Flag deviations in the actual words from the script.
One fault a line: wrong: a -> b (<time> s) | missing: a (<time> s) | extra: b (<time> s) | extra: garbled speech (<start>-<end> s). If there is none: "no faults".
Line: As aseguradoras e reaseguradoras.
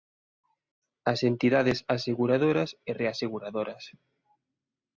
extra: entidades (1.3 s)